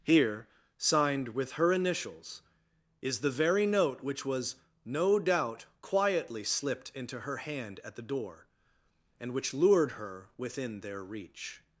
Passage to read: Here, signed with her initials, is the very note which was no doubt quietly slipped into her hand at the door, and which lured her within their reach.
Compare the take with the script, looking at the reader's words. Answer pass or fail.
pass